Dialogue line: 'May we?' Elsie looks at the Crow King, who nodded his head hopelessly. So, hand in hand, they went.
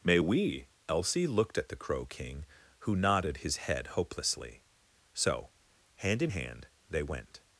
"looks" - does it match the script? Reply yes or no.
no